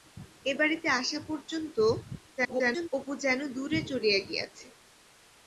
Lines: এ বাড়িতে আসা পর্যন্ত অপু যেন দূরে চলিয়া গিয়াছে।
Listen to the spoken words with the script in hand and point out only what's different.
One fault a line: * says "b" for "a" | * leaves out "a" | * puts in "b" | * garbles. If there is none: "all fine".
* garbles